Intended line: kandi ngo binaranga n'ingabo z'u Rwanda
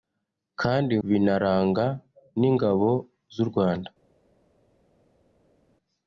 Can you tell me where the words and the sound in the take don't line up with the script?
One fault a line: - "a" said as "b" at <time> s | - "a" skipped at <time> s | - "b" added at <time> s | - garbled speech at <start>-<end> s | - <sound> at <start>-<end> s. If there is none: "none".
- "ngo" skipped at 0.9 s